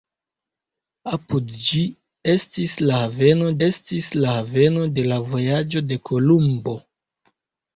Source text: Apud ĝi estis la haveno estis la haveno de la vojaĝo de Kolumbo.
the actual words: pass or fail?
pass